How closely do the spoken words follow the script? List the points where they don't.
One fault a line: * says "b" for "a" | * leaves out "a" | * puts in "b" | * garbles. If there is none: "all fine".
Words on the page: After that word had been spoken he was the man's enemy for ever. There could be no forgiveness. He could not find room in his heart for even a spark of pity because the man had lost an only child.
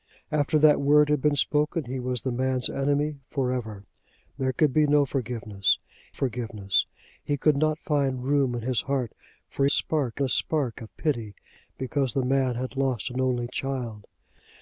* puts in "forgiveness"
* says "spark" for "even"